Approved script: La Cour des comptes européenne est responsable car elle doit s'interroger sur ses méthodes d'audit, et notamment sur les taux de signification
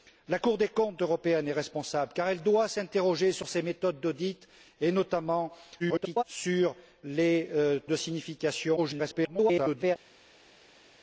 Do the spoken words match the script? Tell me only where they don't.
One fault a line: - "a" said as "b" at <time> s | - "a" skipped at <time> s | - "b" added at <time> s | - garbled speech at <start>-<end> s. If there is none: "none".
- garbled speech at 5.8-6.2 s
- "taux" skipped at 7.5 s
- garbled speech at 8.8-10.0 s